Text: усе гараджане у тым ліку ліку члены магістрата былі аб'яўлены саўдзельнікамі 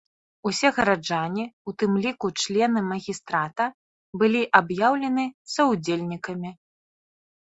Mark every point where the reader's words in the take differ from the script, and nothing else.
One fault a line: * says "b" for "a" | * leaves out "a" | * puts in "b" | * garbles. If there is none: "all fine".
* leaves out "ліку"